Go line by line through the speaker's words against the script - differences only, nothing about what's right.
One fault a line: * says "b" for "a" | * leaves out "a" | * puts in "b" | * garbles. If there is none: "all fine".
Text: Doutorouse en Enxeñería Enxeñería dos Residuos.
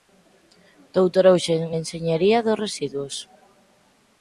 * leaves out "Enxeñería"